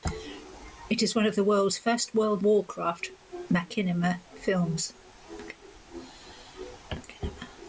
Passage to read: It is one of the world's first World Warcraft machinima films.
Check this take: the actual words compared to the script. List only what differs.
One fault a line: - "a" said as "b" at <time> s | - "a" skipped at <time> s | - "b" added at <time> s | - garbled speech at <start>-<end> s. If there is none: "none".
none